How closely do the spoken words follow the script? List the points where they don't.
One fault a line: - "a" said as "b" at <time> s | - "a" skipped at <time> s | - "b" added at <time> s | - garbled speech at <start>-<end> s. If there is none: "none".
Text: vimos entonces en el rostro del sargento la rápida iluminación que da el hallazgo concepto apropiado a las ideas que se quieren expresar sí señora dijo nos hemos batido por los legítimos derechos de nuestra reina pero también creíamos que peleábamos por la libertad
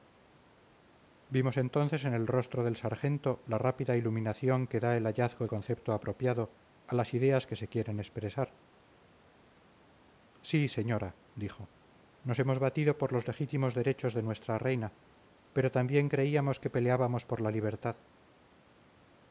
none